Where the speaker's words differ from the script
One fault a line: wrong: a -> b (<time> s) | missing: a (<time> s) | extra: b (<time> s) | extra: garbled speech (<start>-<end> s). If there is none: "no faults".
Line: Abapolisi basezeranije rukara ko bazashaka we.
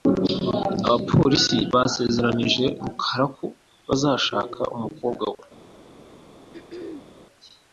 extra: umukobwa (4.8 s)